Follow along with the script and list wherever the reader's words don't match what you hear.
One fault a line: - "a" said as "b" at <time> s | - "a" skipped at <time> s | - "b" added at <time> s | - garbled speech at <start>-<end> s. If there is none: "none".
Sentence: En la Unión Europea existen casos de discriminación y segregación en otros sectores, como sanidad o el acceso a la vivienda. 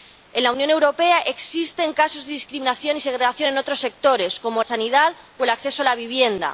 none